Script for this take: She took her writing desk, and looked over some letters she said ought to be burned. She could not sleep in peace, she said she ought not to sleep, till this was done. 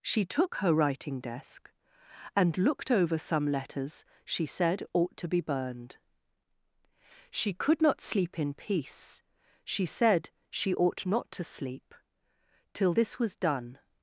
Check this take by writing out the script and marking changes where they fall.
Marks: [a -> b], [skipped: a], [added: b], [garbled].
She took her writing desk, and looked over some letters she said ought to be burned. She could not sleep in peace, she said she ought not to sleep, till this was done.